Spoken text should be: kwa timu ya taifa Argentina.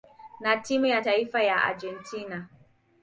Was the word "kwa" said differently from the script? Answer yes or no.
yes